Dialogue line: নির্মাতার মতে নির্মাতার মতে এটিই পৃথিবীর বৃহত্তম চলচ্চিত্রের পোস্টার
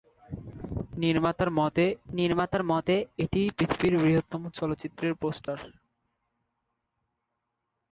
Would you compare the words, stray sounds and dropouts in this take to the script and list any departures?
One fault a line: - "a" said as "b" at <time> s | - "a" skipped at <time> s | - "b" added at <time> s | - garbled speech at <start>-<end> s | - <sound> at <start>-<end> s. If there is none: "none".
- dropout at 5.4-5.5 s